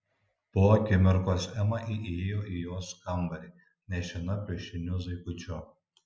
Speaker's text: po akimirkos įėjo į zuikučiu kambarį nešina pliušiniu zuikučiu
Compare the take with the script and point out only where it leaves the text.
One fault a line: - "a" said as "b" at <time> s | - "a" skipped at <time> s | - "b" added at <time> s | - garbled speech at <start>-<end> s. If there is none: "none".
- "ema" added at 1.6 s
- "zuikučiu" said as "jos" at 2.7 s